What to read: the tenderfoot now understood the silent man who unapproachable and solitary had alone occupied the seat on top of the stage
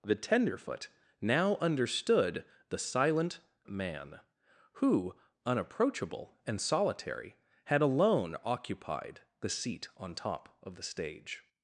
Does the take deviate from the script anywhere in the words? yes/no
no